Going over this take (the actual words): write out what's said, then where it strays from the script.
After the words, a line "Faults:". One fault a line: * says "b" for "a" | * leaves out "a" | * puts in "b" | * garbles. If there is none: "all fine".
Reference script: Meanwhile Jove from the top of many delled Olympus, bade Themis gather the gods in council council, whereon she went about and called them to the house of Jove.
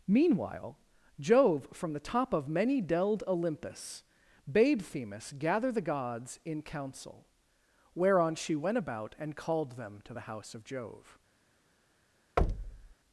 Meanwhile Jove from the top of many delled Olympus, bade Themis gather the gods in council, whereon she went about and called them to the house of Jove.
Faults:
* leaves out "council"